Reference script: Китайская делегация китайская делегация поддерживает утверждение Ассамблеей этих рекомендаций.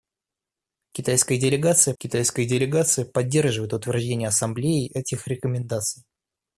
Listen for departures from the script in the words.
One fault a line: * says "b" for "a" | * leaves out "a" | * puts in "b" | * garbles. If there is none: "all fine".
all fine